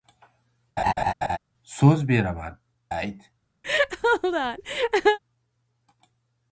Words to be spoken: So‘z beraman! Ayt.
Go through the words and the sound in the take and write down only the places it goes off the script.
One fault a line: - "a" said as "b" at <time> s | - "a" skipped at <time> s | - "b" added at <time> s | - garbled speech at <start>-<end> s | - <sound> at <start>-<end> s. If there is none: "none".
- laugh at 0.8-1.4 s
- laugh at 3.6-5.2 s